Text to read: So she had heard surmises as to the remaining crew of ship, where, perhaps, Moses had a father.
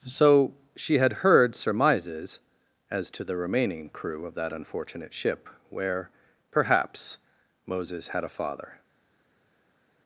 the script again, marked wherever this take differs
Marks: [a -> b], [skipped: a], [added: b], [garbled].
So she had heard surmises as to the remaining crew of [added: that unfortunate] ship, where, perhaps, Moses had a father.